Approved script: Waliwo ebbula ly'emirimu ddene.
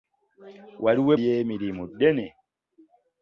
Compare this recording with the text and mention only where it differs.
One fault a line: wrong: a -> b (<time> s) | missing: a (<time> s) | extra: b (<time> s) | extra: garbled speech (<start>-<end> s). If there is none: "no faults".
missing: ebbula (1.1 s)